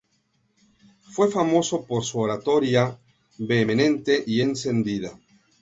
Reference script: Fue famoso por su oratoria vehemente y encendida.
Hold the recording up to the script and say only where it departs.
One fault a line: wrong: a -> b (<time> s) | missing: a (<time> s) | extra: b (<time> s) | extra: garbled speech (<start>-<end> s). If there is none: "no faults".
no faults